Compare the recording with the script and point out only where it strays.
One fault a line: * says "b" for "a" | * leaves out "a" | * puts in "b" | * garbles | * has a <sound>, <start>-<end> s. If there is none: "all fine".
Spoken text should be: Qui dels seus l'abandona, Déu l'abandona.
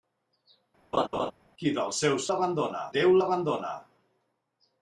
* has a laugh, 0.9-1.3 s